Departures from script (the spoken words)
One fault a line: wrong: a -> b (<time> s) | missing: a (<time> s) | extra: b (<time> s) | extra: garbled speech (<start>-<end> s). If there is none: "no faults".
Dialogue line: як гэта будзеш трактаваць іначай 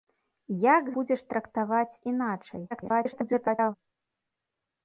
missing: гэта (0.9 s)
extra: garbled speech (2.7-3.8 s)